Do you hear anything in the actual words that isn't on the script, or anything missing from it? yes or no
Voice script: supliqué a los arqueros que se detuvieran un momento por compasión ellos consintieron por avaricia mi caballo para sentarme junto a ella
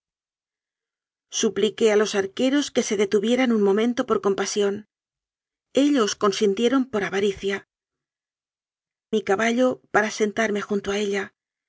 no